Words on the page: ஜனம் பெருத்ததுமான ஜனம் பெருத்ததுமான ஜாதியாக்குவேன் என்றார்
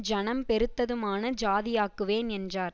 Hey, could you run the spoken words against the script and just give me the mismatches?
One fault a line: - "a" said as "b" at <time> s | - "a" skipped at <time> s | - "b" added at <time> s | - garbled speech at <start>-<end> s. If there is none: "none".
- "ஜனம் பெருத்ததுமான" skipped at 1.3 s